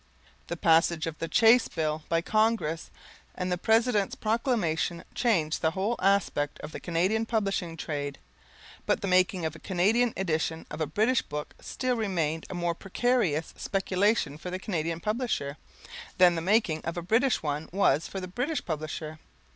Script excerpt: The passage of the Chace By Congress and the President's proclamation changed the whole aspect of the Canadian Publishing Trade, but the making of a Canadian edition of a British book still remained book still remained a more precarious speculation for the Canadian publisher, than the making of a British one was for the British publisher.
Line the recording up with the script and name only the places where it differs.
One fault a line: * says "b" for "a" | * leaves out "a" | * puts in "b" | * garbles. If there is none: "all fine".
* puts in "Bill"
* leaves out "book still remained"